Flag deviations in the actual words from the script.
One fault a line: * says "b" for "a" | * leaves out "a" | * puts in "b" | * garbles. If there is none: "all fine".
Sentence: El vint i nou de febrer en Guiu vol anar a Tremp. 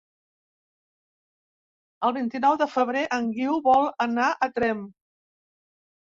all fine